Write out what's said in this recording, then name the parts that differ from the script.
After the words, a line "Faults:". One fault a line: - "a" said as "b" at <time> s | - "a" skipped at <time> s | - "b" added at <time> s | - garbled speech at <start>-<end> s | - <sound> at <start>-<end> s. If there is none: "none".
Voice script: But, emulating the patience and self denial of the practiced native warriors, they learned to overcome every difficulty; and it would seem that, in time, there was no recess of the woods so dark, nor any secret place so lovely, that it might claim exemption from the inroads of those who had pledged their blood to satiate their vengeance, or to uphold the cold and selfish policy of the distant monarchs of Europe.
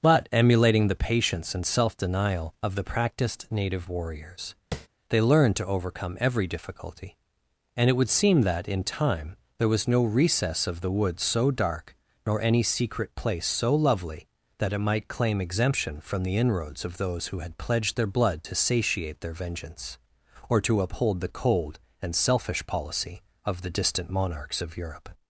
But, emulating the patience and self denial of the practiced native warriors, they learned to overcome every difficulty; and it would seem that, in time, there was no recess of the woods so dark, nor any secret place so lovely, that it might claim exemption from the inroads of those who had pledged their blood to satiate their vengeance, or to uphold the cold and selfish policy of the distant monarchs of Europe.
Faults:
- tap at 4.7-4.9 s